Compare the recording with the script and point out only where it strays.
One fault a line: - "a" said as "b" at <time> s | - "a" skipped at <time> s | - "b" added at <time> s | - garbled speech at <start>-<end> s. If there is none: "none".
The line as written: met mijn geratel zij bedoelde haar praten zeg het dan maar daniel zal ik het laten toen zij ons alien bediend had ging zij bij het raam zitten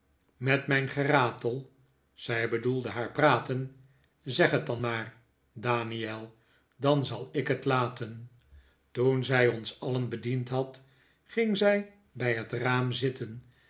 - "dan" added at 6.8 s